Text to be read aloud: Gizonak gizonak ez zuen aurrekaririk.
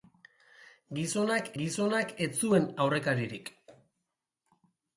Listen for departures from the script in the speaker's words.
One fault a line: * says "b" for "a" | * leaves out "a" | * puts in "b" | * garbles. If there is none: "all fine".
all fine